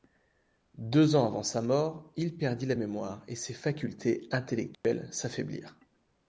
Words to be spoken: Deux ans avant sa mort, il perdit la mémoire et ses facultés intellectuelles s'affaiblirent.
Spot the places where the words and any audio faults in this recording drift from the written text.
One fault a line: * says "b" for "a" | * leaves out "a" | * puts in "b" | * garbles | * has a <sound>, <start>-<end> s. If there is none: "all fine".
* has a dropout, 4.7-4.8 s